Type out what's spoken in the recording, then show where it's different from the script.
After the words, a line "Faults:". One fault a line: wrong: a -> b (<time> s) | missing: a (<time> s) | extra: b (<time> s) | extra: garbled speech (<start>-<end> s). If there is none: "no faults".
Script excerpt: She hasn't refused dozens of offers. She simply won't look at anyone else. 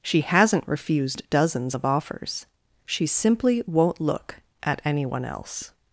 She hasn't refused dozens of offers. She simply won't look at anyone else.
Faults:
no faults